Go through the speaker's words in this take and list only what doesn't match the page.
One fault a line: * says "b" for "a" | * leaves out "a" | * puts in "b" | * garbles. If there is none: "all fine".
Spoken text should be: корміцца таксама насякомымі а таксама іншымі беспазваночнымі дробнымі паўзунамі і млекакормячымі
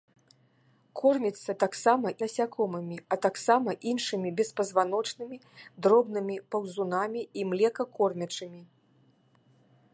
all fine